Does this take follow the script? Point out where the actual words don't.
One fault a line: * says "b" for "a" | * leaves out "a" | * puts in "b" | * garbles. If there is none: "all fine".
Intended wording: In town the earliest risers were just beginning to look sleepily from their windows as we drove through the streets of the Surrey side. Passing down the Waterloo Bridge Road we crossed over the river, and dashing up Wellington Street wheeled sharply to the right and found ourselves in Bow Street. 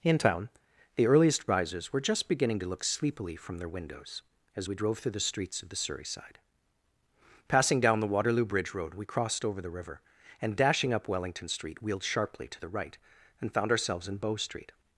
all fine